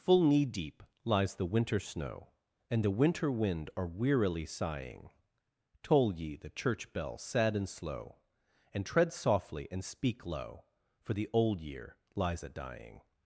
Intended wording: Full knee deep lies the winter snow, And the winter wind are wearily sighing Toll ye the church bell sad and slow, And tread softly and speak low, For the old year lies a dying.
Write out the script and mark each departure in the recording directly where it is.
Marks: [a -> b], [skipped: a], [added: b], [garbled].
Full knee deep lies the winter snow, And the winter wind are wearily sighing Toll ye the church bell sad and slow, And tread softly and speak low, For the old year lies a dying.